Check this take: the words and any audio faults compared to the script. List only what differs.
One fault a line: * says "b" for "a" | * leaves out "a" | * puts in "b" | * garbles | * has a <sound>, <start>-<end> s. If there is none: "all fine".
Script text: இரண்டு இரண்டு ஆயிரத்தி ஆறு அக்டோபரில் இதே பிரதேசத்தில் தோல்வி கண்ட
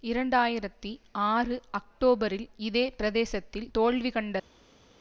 * leaves out "இரண்டு"